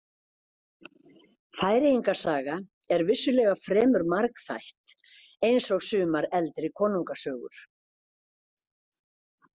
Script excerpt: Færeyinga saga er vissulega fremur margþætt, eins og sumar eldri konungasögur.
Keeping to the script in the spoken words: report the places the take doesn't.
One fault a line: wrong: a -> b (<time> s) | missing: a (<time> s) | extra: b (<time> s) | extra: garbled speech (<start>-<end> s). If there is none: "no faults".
no faults